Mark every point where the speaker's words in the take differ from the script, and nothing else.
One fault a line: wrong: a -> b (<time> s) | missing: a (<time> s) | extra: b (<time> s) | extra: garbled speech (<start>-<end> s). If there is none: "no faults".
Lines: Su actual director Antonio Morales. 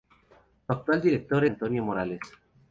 no faults